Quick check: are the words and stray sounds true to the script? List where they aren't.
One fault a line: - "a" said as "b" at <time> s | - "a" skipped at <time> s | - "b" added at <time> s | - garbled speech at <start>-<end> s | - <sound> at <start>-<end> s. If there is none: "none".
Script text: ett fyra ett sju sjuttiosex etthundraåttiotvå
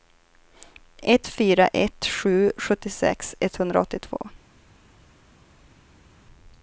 none